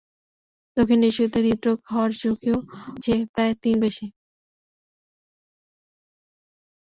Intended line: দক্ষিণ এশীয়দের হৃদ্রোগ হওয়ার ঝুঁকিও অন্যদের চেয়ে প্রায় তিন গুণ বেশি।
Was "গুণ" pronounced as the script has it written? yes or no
no